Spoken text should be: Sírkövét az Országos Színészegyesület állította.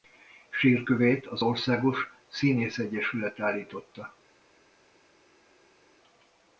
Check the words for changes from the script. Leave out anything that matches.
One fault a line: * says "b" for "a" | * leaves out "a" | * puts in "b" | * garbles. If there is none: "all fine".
all fine